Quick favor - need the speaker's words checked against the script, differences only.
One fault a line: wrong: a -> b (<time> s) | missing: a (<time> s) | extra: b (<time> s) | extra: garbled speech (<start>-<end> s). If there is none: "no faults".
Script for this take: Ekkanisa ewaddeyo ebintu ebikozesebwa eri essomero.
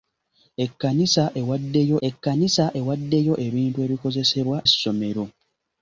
extra: ekkanisa ewaddeyo (2.1 s)
missing: eri (4.6 s)